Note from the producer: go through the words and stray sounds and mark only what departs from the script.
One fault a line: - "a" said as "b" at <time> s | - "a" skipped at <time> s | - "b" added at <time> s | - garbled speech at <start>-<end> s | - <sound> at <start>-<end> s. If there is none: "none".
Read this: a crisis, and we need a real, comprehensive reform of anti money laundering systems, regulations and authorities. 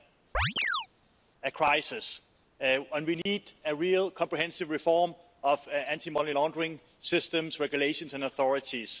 - chirp at 0.3-0.9 s
- dropout at 3.2-3.3 s